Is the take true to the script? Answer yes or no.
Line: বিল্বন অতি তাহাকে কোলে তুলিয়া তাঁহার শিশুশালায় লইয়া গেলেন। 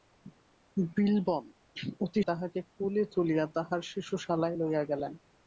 yes